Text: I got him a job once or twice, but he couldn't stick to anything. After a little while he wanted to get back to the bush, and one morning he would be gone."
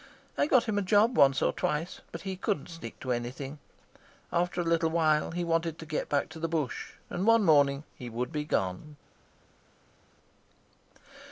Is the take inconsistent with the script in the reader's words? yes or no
no